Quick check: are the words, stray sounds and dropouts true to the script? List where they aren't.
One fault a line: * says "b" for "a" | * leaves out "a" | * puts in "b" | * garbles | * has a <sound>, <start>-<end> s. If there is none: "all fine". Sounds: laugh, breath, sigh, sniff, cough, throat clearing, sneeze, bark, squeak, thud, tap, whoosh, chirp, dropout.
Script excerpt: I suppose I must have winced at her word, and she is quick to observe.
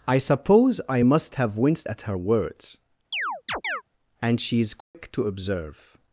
* says "words" for "word"
* has a chirp, 3.1-3.8 s
* has a dropout, 4.8-4.9 s